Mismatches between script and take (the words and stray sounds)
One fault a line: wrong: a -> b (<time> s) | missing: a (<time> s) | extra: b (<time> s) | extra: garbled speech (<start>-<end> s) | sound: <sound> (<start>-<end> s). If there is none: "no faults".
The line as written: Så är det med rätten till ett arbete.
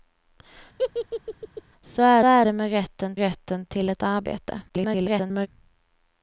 sound: laugh (0.8-1.6 s)
extra: är (2.2 s)
extra: rätten (3.2 s)
extra: garbled speech (4.7-5.5 s)